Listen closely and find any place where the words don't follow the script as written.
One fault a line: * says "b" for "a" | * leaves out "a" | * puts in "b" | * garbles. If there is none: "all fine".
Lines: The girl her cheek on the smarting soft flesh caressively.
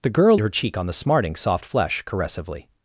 all fine